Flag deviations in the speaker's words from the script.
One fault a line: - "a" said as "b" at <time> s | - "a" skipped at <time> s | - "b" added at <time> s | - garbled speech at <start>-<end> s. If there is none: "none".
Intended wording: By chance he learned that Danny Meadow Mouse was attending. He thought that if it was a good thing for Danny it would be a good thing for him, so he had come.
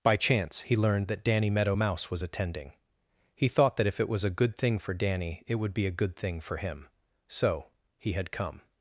none